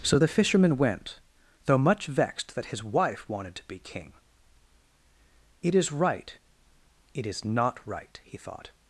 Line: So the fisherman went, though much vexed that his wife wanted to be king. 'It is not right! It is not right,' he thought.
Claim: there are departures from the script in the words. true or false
true